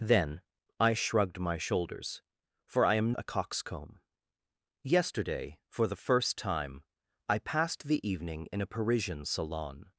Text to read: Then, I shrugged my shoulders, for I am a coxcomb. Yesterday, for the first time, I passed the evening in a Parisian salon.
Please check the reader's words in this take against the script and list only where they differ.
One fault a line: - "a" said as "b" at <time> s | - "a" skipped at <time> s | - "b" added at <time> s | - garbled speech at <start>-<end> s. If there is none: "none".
none